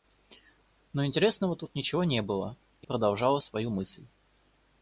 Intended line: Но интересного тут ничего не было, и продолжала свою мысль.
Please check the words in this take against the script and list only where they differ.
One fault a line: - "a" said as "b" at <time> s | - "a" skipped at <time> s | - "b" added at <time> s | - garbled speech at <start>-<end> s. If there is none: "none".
none